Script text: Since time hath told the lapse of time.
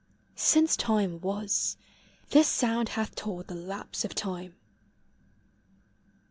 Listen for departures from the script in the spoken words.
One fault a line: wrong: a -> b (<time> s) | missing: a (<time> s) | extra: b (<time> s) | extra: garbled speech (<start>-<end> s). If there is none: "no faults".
extra: was This sound (1.2 s)